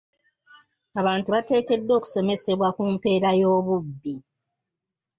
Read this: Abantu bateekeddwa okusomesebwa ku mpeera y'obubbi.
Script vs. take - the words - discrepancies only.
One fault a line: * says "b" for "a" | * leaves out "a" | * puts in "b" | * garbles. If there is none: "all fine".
all fine